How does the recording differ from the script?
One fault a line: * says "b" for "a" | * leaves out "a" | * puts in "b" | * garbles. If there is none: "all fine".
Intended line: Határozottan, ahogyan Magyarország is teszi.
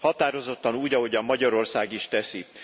* puts in "úgy"